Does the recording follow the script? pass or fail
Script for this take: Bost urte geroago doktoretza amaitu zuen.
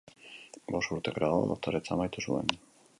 pass